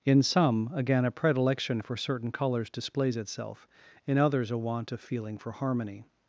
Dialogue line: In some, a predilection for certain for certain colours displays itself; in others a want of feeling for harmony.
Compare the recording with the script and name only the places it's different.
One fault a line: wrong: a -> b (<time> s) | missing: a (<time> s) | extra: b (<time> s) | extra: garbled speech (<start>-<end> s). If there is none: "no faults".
extra: again (0.7 s)
missing: for certain (2.3 s)